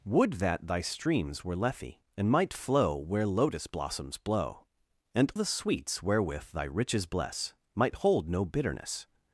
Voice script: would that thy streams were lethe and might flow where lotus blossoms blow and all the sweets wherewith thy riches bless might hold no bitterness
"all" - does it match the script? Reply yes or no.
no